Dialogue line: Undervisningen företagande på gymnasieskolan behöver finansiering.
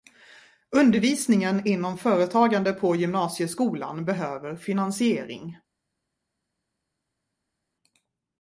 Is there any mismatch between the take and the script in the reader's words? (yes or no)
yes